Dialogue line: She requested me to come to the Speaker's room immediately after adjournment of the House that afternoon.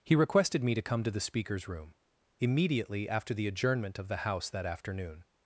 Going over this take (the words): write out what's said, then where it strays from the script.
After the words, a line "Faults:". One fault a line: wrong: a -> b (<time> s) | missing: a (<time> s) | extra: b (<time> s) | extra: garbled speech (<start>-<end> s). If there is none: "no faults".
He requested me to come to the Speaker's room immediately after the adjournment of the House that afternoon.
Faults:
wrong: She -> He (0.0 s)
extra: the (3.4 s)